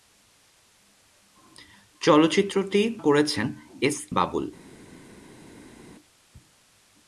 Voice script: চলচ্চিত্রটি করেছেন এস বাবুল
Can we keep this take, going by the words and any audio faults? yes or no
yes